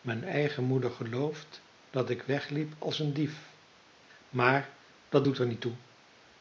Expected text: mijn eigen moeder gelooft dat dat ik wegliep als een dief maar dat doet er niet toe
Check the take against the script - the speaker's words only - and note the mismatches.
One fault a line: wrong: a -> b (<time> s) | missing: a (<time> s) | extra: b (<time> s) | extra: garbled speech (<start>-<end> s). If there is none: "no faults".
missing: dat (2.1 s)